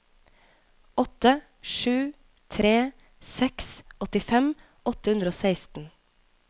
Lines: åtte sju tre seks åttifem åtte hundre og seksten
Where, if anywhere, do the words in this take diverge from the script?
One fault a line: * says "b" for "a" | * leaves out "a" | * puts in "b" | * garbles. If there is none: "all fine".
all fine